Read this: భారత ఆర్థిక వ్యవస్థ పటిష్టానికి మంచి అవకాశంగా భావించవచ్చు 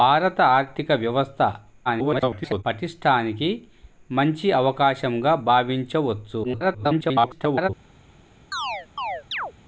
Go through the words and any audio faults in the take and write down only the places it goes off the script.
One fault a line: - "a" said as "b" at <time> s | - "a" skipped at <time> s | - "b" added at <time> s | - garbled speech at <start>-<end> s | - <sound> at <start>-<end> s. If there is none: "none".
- garbled speech at 1.8-2.6 s
- garbled speech at 6.4-7.7 s
- chirp at 8.5-9.5 s